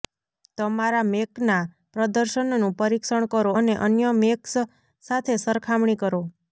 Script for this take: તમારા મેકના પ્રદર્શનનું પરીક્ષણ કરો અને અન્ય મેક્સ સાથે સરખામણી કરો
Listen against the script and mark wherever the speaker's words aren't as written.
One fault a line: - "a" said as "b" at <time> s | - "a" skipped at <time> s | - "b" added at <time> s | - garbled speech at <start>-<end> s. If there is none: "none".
none